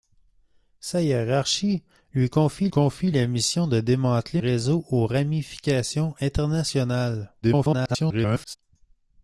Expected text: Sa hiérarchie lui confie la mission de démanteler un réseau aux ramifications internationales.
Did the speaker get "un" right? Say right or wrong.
wrong